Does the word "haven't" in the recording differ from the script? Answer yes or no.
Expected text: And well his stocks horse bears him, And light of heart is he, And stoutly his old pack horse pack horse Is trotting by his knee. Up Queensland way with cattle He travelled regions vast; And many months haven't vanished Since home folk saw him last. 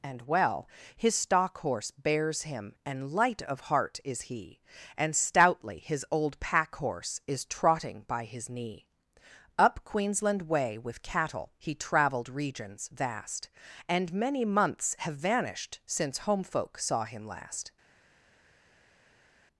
yes